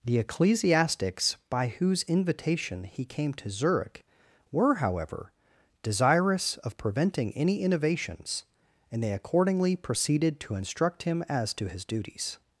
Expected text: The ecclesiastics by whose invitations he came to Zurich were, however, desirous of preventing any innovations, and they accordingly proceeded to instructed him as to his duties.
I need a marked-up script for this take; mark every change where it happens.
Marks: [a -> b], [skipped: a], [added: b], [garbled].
The ecclesiastics by whose [invitations -> invitation] he came to Zurich were, however, desirous of preventing any innovations, and they accordingly proceeded to [instructed -> instruct] him as to his duties.